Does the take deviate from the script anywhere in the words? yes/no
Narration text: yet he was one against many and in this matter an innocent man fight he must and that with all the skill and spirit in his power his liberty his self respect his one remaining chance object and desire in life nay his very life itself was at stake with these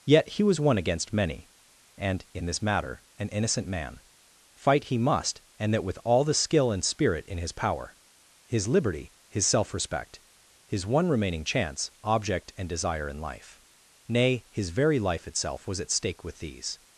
no